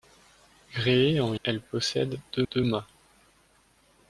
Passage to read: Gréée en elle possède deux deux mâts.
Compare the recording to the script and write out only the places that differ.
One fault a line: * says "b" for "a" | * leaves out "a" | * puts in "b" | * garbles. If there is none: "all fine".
all fine